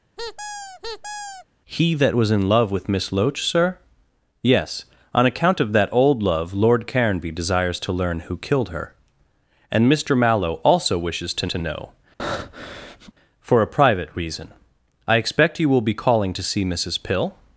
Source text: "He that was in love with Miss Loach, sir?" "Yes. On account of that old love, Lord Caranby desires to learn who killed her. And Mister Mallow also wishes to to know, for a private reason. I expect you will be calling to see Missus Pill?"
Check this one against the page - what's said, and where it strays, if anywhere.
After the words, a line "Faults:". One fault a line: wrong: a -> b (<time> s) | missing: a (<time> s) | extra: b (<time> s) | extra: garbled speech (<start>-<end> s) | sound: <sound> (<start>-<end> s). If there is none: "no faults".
"He that was in love with Miss Loach, sir?" "Yes. On account of that old love, Lord Caranby desires to learn who killed her. And Mister Mallow also wishes to to know, for a private reason. I expect you will be calling to see Missus Pill?"
Faults:
sound: squeak (0.2-1.5 s)
sound: breath (12.2-13.1 s)